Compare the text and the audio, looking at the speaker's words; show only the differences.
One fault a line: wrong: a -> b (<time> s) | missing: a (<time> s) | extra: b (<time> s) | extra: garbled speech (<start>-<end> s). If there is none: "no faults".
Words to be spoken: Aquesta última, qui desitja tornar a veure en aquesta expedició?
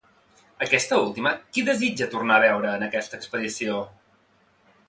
no faults